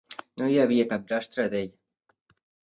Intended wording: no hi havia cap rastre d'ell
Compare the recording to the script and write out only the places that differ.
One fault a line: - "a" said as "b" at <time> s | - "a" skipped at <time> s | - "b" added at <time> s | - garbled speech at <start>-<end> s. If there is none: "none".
none